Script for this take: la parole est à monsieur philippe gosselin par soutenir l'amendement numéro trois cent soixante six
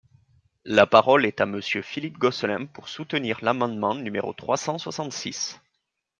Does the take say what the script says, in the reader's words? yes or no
no